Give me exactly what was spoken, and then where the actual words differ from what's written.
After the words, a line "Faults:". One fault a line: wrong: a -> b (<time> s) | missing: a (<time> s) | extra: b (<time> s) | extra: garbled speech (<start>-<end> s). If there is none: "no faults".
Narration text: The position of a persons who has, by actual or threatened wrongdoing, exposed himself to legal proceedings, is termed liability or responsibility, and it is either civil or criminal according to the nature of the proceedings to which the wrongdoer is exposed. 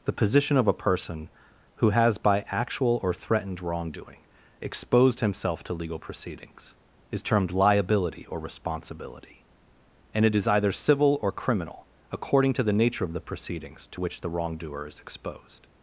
The position of a person who has, by actual or threatened wrongdoing, exposed himself to legal proceedings, is termed liability or responsibility, and it is either civil or criminal according to the nature of the proceedings to which the wrongdoer is exposed.
Faults:
wrong: persons -> person (0.8 s)